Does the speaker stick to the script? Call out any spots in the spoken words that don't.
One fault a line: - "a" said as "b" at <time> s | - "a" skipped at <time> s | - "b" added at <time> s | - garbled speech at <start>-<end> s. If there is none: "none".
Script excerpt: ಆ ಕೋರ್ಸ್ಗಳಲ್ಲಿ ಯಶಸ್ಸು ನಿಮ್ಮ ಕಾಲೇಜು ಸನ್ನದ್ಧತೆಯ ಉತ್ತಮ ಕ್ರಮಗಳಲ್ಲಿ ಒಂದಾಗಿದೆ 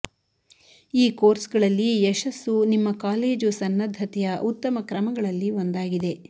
- "ಆ" said as "ಈ" at 0.9 s